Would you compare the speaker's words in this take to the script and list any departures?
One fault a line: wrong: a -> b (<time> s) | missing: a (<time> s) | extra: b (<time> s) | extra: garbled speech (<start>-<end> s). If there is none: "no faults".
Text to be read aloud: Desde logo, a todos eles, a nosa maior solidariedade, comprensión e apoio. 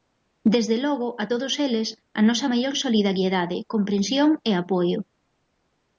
no faults